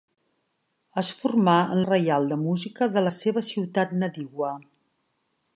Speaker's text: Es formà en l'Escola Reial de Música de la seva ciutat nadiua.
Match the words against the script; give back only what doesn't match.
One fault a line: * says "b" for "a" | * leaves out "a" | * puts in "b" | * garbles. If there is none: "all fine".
* leaves out "l'Escola"